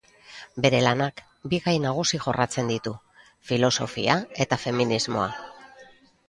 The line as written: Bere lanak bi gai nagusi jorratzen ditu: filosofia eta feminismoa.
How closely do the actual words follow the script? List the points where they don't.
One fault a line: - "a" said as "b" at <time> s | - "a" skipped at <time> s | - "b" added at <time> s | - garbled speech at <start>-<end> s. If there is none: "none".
none